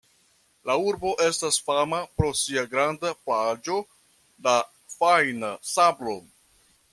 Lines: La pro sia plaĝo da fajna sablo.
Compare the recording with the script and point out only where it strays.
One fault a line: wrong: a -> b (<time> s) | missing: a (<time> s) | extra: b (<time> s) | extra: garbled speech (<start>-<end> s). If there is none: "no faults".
extra: urbo estas fama (0.9 s)
extra: granda (2.7 s)